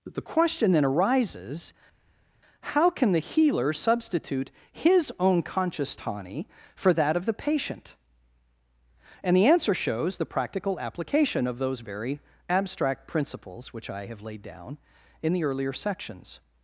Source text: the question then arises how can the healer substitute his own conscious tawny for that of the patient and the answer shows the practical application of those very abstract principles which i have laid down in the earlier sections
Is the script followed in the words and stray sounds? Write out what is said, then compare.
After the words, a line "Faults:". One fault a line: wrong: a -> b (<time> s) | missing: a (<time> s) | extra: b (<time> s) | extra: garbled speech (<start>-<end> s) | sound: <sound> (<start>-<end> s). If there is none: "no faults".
the question then arises how can the healer substitute his own conscious tawny for that of the patient and the answer shows the practical application of those very abstract principles which i have laid down in the earlier sections
Faults:
no faults